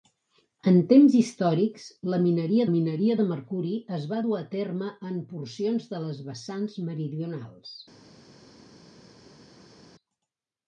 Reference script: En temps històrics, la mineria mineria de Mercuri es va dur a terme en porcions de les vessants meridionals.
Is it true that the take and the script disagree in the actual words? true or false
false